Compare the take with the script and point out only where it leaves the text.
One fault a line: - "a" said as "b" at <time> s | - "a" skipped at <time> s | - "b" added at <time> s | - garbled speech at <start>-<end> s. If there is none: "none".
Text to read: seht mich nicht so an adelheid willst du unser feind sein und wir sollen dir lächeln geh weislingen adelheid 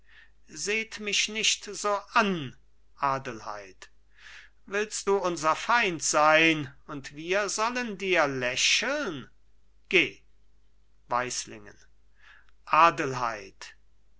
none